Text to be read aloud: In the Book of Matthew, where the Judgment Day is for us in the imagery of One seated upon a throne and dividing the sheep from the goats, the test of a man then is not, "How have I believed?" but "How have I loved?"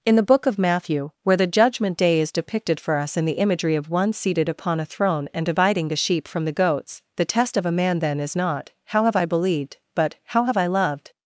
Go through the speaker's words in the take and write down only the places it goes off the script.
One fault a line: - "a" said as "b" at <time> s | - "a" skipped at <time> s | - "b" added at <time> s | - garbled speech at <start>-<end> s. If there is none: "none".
- "depicted" added at 2.3 s